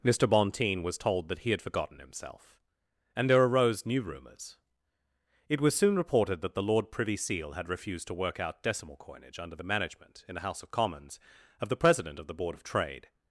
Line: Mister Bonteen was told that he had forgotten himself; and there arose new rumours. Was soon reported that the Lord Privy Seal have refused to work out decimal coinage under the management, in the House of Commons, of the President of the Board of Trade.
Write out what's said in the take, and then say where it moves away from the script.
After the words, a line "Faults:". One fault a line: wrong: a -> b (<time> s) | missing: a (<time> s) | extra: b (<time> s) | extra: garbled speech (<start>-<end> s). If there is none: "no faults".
Mister Bonteen was told that he had forgotten himself; and there arose new rumours. It was soon reported that the Lord Privy Seal had refused to work out decimal coinage under the management, in the House of Commons, of the President of the Board of Trade.
Faults:
extra: It (5.5 s)
wrong: have -> had (7.5 s)